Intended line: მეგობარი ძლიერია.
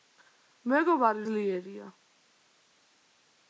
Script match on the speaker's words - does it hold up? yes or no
yes